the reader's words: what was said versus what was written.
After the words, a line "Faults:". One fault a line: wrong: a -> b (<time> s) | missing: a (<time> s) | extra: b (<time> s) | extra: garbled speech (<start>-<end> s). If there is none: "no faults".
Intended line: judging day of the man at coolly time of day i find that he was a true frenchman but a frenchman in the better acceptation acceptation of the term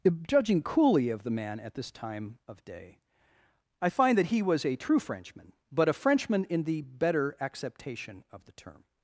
judging coolly of the man at this time of day i find that he was a true frenchman but a frenchman in the better acceptation of the term
Faults:
wrong: day -> coolly (0.6 s)
wrong: coolly -> this (1.8 s)
missing: acceptation (8.2 s)